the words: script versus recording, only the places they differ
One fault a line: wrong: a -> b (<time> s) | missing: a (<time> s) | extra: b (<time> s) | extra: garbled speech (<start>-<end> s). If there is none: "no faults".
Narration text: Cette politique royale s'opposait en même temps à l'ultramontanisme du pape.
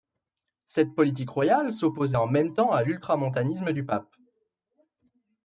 no faults